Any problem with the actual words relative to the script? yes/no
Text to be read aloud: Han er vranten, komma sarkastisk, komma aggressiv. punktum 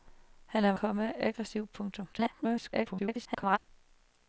yes